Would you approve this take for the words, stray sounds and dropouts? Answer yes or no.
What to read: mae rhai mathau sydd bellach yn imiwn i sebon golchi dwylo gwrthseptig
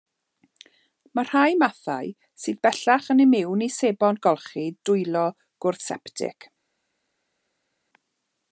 yes